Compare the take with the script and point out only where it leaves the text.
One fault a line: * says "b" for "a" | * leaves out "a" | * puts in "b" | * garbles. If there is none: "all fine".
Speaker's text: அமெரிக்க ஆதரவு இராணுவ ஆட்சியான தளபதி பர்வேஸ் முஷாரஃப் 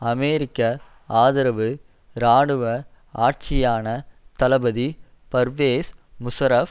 all fine